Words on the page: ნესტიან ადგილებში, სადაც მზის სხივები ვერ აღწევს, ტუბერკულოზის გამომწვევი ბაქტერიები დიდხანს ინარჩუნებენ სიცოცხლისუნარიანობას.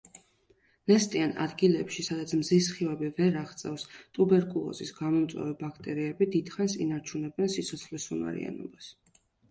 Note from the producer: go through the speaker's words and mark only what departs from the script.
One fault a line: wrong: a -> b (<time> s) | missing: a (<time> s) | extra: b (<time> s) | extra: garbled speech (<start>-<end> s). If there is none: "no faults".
no faults